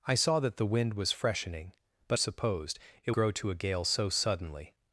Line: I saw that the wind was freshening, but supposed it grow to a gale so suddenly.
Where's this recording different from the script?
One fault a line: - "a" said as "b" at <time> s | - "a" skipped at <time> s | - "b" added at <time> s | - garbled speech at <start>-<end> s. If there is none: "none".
none